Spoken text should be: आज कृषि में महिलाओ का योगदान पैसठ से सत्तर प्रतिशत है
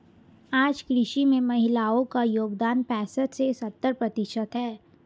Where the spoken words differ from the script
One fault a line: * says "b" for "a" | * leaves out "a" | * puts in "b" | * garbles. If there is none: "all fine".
all fine